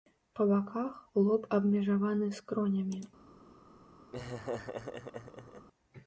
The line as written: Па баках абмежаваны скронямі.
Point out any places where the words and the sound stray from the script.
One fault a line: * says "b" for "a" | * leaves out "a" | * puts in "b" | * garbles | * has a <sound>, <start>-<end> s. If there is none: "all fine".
* puts in "лоб"
* has a laugh, 4.1-5.7 s